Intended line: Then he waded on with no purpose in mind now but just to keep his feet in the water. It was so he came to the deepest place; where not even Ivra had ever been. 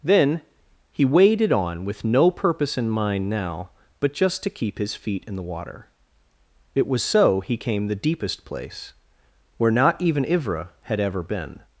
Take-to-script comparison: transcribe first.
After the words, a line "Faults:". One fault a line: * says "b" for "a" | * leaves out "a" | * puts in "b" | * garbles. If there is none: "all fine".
Then he waded on with no purpose in mind now but just to keep his feet in the water. It was so he came the deepest place; where not even Ivra had ever been.
Faults:
* leaves out "to"